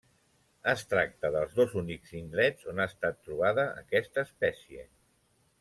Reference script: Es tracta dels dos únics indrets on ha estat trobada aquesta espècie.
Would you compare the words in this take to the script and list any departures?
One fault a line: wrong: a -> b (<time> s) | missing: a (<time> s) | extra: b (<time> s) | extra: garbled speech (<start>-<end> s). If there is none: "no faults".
no faults